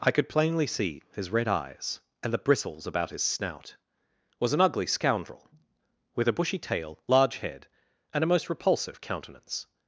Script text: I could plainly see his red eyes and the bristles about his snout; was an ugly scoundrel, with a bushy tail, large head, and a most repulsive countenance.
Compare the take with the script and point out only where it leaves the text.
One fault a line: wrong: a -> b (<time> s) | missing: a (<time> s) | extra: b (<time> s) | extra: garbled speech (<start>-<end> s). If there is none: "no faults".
no faults